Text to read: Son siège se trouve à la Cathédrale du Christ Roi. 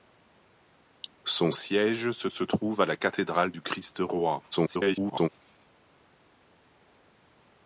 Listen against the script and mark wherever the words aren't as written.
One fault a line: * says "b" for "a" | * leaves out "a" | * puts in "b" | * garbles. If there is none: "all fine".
* puts in "se"
* garbles